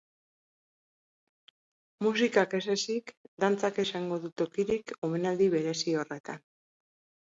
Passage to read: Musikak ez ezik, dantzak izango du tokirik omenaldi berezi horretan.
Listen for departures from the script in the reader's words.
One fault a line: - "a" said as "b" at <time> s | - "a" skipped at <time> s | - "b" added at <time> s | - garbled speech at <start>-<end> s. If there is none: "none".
none